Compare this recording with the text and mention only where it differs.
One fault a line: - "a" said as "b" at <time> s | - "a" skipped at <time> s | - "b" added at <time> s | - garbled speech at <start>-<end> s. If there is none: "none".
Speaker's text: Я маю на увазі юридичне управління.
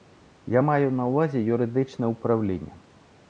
none